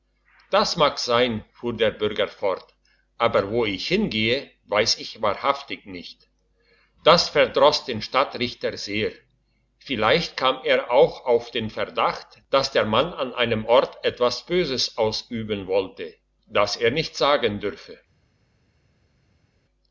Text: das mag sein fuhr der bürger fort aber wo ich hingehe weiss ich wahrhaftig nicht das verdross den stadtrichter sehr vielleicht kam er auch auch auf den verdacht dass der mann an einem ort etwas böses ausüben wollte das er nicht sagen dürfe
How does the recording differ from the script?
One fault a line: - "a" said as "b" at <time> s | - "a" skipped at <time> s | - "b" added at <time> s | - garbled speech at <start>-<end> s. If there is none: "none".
- "auch" skipped at 11.2 s